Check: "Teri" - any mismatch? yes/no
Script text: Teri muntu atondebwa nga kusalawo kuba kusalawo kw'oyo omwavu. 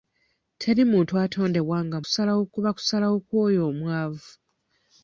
no